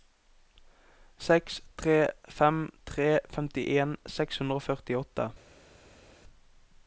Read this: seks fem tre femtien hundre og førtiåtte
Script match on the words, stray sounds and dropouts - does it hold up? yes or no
no